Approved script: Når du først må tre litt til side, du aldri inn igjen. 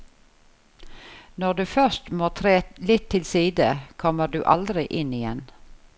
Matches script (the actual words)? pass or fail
fail